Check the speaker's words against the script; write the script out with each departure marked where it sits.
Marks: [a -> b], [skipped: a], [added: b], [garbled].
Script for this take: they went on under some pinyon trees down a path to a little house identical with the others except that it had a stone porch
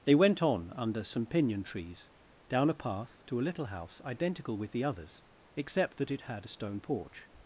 they went on under some pinyon trees down a path to a little house identical with the others except that it had a stone porch